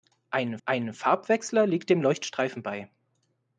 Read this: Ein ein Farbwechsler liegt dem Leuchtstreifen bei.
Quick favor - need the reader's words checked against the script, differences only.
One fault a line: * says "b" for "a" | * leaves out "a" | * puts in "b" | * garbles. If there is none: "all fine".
all fine